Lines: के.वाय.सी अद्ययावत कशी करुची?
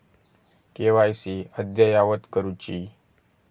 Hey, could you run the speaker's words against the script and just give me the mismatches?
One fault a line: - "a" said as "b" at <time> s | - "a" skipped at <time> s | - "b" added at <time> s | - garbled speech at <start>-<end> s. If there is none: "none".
- "कशी" skipped at 2.2 s